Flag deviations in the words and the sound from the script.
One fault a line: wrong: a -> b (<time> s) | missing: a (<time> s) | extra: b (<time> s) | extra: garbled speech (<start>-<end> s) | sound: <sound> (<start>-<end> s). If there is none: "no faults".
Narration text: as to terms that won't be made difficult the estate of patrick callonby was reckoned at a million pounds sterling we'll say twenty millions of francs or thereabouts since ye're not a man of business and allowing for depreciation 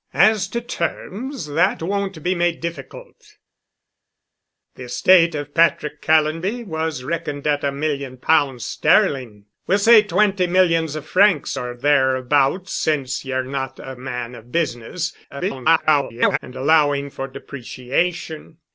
extra: garbled speech (15.3-16.4 s)